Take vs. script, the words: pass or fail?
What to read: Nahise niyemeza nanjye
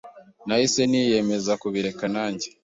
fail